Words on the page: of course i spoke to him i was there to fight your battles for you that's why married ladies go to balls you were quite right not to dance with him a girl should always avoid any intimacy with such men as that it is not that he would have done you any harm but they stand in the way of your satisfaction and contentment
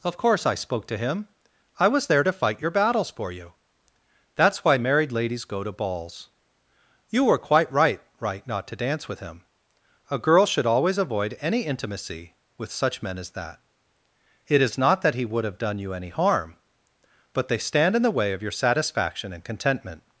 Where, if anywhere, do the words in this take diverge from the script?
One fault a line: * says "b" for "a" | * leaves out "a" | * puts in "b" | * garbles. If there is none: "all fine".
* puts in "right"